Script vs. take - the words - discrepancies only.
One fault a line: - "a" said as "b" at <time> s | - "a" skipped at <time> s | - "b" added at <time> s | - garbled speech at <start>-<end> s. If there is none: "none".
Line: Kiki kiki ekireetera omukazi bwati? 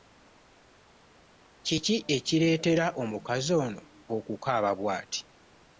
- "kiki" skipped at 1.9 s
- "ono okukaaba" added at 3.7 s